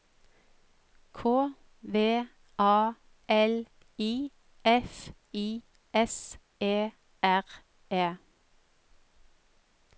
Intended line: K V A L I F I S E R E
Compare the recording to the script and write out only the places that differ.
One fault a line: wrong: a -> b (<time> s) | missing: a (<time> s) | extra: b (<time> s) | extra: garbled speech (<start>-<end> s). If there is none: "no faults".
no faults